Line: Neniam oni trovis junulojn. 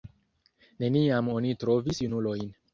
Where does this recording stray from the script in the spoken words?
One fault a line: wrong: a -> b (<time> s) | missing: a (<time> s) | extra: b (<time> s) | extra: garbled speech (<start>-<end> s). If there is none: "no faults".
no faults